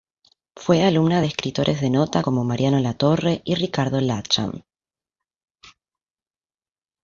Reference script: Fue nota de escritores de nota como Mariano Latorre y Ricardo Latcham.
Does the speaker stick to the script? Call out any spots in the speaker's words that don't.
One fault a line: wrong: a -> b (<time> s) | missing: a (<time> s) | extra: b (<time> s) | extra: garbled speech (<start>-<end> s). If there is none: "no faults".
wrong: nota -> alumna (0.8 s)